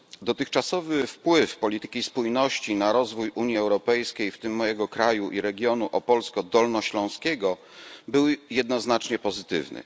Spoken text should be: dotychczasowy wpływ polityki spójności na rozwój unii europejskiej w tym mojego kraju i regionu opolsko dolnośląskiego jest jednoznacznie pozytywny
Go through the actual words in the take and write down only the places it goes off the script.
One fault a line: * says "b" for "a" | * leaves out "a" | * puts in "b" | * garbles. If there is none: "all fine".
* says "był" for "jest"